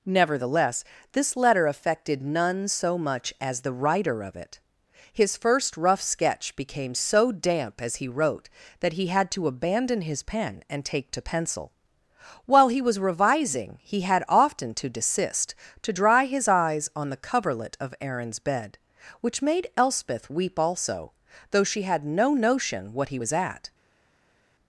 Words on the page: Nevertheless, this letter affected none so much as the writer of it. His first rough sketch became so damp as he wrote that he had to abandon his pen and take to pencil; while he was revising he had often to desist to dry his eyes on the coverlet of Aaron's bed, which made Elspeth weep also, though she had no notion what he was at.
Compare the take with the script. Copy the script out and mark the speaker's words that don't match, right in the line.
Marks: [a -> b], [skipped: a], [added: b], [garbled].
Nevertheless, this letter affected none so much as the writer of it. His first rough sketch became so damp as he wrote that he had to abandon his pen and take to pencil; while he was revising he had often to desist to dry his eyes on the coverlet of Aaron's bed, which made Elspeth weep also, though she had no notion what he was at.